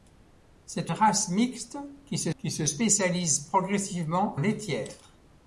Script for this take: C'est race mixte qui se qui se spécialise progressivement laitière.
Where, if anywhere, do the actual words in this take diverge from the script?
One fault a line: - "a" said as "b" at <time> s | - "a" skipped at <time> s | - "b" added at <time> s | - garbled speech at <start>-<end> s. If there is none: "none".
none